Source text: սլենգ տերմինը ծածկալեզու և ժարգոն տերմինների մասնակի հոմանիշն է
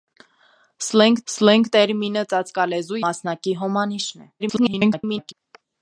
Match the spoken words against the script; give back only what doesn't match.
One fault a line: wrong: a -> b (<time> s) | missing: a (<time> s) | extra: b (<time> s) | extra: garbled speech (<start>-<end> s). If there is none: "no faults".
extra: սլենգ (1.3 s)
missing: և ժարգոն տերմինների (3.0 s)
extra: garbled speech (4.4-5.3 s)